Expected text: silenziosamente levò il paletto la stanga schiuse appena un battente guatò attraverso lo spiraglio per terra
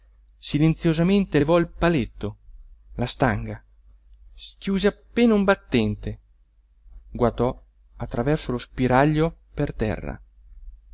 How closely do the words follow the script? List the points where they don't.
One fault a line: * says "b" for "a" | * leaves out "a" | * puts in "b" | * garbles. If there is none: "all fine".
all fine